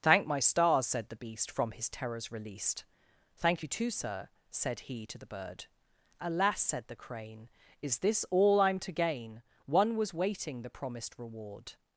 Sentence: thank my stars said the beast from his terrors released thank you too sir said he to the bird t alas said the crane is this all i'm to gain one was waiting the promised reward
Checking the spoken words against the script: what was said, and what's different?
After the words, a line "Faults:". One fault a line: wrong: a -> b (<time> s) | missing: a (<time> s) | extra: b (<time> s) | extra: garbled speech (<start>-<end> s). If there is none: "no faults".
thank my stars said the beast from his terrors released thank you too sir said he to the bird alas said the crane is this all i'm to gain one was waiting the promised reward
Faults:
missing: t (5.7 s)